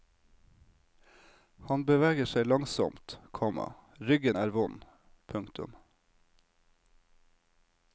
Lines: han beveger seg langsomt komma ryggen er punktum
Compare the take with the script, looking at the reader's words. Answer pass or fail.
fail